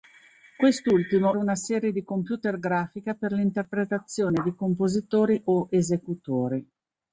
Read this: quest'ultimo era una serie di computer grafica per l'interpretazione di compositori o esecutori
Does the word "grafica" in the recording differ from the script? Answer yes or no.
no